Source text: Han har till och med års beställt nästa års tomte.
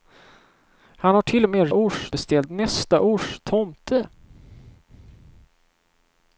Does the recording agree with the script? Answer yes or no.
yes